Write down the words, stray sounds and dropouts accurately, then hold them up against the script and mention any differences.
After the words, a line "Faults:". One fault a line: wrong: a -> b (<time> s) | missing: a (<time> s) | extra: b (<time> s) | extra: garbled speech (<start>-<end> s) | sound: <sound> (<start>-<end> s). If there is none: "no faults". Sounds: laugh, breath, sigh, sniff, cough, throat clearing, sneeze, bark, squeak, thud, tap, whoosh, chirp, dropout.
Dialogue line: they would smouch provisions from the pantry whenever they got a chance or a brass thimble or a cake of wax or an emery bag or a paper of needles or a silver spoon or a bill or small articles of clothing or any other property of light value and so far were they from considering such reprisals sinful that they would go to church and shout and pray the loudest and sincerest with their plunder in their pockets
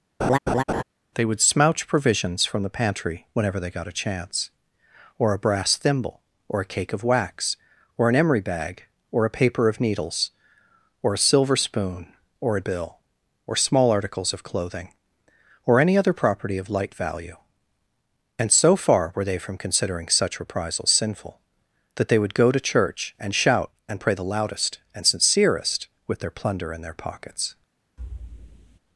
they would smouch provisions from the pantry whenever they got a chance or a brass thimble or a cake of wax or an emery bag or a paper of needles or a silver spoon or a bill or small articles of clothing or any other property of light value and so far were they from considering such reprisals sinful that they would go to church and shout and pray the loudest and sincerest with their plunder in their pockets
Faults:
sound: laugh (0.2-0.8 s)
sound: thud (28.0-28.8 s)